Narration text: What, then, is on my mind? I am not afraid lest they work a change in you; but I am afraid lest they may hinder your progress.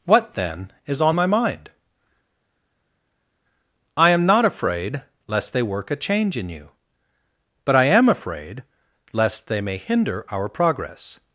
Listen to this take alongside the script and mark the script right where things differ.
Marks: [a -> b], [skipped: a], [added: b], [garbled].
What, then, is on my mind? I am not afraid lest they work a change in you; but I am afraid lest they may hinder [your -> our] progress.